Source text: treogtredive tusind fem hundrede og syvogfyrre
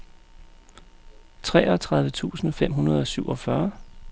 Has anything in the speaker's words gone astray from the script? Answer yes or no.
no